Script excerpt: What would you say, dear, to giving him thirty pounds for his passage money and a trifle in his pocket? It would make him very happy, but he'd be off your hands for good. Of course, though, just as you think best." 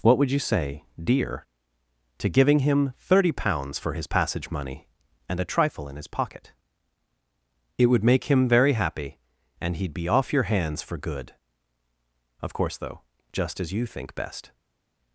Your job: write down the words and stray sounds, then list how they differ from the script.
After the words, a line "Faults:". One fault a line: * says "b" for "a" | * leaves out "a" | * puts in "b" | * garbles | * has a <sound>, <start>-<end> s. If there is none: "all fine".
What would you say, dear, to giving him thirty pounds for his passage money and a trifle in his pocket? It would make him very happy, and he'd be off your hands for good. Of course, though, just as you think best."
Faults:
* says "and" for "but"